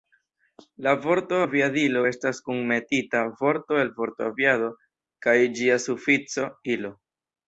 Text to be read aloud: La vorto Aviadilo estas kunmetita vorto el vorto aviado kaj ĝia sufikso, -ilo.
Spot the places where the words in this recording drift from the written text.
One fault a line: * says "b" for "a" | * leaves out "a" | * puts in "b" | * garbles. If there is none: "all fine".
all fine